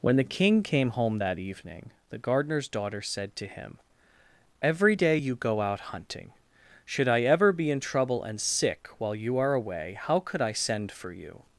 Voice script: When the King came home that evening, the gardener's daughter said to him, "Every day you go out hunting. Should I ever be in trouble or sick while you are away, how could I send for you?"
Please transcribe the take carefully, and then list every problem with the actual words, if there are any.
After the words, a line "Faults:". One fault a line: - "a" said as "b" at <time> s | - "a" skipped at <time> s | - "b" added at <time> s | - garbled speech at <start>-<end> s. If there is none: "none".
When the King came home that evening, the gardener's daughter said to him, "Every day you go out hunting. Should I ever be in trouble and sick while you are away, how could I send for you?"
Faults:
- "or" said as "and" at 8.2 s